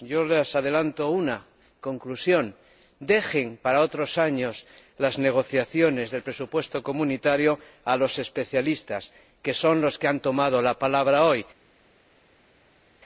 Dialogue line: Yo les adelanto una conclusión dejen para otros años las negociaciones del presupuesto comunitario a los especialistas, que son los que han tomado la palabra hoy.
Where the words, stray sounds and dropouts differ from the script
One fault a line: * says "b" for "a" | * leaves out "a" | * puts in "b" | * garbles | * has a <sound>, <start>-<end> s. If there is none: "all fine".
all fine